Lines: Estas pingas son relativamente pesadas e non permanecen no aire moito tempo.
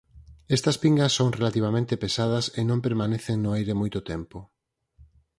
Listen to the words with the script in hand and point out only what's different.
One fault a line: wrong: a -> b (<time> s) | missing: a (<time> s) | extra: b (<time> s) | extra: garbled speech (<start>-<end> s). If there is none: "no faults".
no faults